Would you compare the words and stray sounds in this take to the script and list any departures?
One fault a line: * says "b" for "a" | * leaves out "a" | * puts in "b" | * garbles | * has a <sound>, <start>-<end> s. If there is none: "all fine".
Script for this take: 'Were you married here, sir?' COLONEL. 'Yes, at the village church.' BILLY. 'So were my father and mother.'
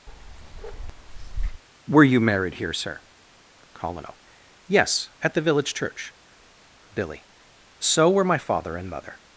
* has a bark, 0.1-1.6 s